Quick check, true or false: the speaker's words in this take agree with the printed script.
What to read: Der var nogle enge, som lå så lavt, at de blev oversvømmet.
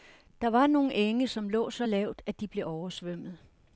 true